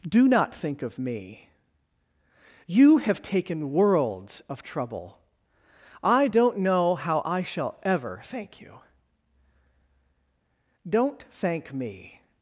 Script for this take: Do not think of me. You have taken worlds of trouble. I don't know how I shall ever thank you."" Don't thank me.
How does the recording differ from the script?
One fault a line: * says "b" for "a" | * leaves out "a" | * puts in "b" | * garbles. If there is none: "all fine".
all fine